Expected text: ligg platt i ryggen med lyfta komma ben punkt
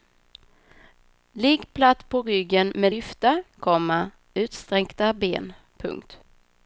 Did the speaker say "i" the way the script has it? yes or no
no